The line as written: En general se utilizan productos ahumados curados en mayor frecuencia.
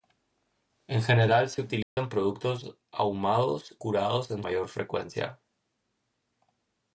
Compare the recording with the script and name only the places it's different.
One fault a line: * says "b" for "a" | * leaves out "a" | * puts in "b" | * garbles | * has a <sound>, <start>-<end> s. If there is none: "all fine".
* has a dropout, 1.8-2.0 s